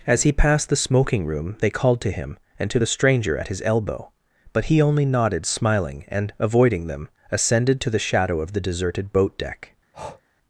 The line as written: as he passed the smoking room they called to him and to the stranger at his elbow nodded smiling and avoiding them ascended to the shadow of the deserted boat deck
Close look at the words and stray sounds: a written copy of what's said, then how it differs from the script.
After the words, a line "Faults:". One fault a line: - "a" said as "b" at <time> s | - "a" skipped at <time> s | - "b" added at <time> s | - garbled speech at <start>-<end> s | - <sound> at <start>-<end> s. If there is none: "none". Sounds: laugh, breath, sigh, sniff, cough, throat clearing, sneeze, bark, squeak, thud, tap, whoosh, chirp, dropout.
as he passed the smoking room they called to him and to the stranger at his elbow but he only nodded smiling and avoiding them ascended to the shadow of the deserted boat deck
Faults:
- "but he only" added at 4.5 s
- breath at 9.9-10.2 s